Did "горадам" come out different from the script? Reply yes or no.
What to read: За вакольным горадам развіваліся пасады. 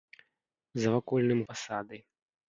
yes